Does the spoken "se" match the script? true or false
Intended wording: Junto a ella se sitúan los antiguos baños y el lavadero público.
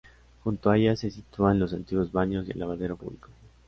true